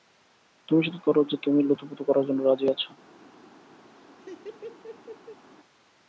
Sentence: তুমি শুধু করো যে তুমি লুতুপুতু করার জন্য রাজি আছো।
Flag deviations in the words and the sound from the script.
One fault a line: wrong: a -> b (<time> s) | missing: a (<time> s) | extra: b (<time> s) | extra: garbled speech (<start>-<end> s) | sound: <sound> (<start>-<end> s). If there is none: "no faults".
sound: laugh (3.9-5.4 s)